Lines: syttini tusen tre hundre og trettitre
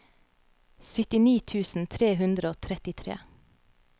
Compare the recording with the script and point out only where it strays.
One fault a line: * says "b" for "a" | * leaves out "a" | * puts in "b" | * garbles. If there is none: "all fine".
all fine